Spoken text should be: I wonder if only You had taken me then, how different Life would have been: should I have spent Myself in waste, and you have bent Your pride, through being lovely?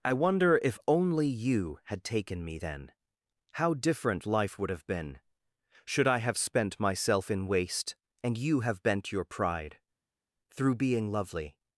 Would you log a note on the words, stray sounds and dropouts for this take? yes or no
no